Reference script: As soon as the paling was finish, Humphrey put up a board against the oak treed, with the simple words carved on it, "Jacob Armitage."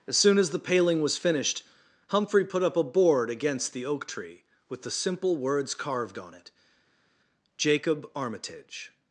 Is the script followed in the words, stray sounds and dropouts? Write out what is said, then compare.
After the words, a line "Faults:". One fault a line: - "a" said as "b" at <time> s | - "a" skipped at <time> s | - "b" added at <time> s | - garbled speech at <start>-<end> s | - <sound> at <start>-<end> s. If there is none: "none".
As soon as the paling was finished, Humphrey put up a board against the oak tree, with the simple words carved on it, "Jacob Armitage."
Faults:
- "finish" said as "finished" at 1.2 s
- "treed" said as "tree" at 4.1 s